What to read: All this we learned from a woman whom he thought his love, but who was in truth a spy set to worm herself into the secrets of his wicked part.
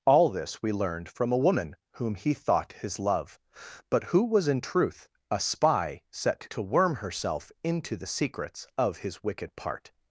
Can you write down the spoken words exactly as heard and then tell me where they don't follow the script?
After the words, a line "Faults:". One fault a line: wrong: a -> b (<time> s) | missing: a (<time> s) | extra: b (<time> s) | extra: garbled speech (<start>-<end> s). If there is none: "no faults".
All this we learned from a woman whom he thought his love, but who was in truth a spy set to worm herself into the secrets of his wicked part.
Faults:
no faults